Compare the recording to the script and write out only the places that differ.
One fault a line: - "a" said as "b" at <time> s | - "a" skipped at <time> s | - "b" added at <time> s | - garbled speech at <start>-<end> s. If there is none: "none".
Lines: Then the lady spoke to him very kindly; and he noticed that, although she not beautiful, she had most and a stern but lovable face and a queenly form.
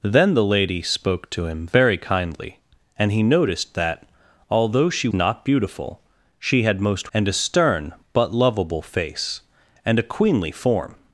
none